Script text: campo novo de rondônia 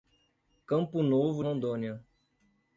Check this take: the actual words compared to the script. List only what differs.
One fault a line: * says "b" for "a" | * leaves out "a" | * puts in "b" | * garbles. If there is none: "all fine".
* leaves out "de"